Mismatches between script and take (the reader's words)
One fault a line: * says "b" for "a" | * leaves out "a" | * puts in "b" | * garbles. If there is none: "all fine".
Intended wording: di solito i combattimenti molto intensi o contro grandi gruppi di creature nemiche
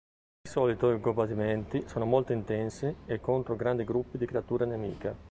* puts in "sono"
* says "e" for "o"